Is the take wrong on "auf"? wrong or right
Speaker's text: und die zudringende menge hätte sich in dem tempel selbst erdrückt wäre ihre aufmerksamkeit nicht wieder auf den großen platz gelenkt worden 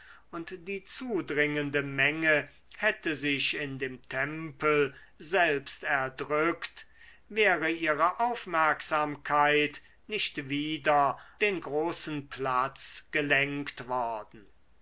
wrong